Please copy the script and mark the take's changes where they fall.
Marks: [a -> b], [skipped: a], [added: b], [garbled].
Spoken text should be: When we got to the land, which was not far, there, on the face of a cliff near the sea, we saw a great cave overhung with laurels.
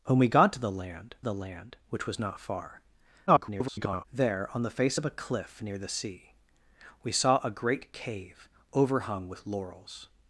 When we got to the land, [added: the land] which was not far, [garbled] there, on the face of a cliff near the sea, we saw a great cave overhung with laurels.